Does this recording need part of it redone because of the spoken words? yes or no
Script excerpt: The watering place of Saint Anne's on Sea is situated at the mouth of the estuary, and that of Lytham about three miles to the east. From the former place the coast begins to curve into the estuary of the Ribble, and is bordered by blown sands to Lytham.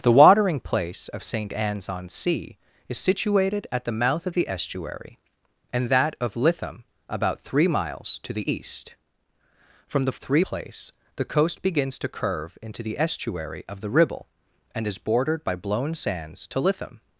yes